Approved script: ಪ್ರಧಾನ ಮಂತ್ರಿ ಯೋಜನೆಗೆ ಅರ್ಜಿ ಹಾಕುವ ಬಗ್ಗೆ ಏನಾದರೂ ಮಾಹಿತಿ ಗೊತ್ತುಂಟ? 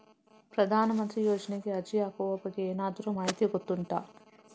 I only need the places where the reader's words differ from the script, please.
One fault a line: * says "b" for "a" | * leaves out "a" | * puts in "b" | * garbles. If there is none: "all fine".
all fine